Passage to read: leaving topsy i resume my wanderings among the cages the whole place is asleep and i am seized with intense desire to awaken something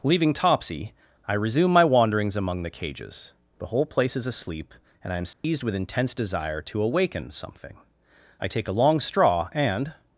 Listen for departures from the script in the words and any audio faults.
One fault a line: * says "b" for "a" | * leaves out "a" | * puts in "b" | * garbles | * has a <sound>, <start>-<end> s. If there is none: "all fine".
* has a dropout, 5.3-5.4 s
* puts in "i take a long straw and"